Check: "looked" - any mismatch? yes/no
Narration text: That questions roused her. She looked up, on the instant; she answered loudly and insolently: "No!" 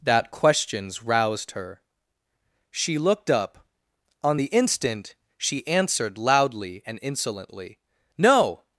no